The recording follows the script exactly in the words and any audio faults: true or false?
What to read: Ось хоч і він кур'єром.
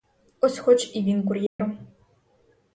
false